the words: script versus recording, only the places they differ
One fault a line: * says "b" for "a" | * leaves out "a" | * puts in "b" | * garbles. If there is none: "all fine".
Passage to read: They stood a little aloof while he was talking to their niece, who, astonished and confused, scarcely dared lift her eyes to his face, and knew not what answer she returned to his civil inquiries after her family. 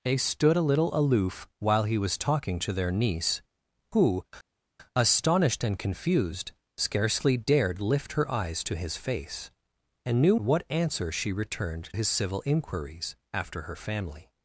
* leaves out "not"
* leaves out "to"